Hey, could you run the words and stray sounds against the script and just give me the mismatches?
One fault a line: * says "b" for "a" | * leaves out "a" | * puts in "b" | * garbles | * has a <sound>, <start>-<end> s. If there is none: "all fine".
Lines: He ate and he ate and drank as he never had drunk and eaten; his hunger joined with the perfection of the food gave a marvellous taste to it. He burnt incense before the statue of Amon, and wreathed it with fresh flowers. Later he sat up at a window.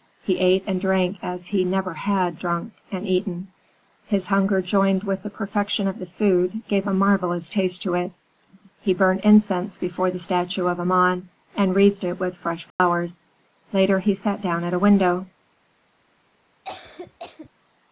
* leaves out "he ate and"
* has a dropout, 12.7-12.8 s
* says "down" for "up"
* has a cough, 16.6-17.5 s